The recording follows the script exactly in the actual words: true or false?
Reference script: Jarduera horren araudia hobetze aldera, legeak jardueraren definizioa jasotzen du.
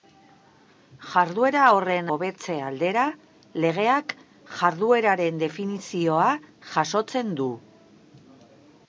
false